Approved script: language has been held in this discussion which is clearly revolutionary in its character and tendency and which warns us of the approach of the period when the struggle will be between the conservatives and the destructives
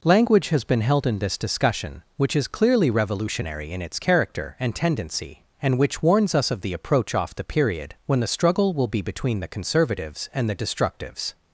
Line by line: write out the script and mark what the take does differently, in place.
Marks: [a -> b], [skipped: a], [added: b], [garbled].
language has been held in this discussion which is clearly revolutionary in its character and tendency and which warns us of the approach [of -> off] the period when the struggle will be between the conservatives and the destructives